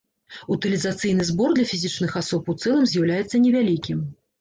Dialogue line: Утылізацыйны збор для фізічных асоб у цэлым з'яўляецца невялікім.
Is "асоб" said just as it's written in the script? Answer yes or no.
yes